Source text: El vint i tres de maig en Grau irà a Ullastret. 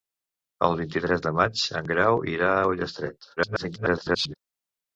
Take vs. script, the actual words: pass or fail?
fail